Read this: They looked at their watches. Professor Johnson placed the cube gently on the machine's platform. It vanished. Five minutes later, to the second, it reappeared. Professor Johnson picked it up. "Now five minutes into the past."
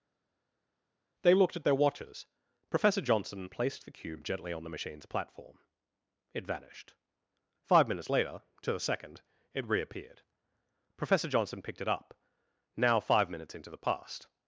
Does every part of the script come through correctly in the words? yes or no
yes